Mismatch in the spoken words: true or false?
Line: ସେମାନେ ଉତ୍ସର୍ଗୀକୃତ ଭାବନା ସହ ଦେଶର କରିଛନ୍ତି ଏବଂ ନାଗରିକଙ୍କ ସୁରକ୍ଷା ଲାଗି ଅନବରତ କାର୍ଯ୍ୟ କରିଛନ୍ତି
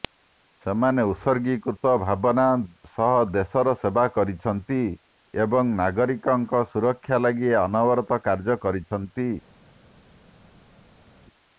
true